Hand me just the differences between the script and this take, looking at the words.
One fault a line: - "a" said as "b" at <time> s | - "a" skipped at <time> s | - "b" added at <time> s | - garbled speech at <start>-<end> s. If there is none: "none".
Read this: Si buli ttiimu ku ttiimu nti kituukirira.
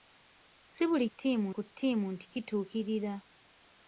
none